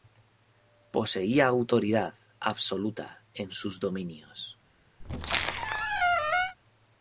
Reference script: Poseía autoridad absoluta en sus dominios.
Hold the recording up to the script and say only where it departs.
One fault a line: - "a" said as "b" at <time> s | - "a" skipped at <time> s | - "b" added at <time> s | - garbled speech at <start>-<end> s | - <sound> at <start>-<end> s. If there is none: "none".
- squeak at 5.0-6.6 s